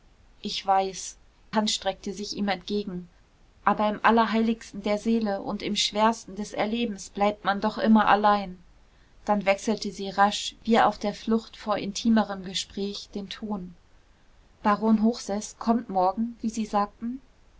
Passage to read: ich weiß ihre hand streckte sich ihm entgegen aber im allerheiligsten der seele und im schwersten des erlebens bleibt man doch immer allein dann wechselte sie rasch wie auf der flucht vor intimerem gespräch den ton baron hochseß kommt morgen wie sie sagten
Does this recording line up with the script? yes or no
no